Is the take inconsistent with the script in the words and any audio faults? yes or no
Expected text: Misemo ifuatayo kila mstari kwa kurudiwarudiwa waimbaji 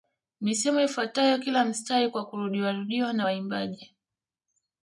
yes